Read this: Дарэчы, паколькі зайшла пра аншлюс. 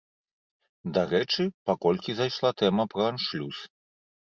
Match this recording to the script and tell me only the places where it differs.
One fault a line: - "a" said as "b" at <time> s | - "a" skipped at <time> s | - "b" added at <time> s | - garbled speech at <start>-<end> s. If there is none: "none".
- "тэма" added at 2.7 s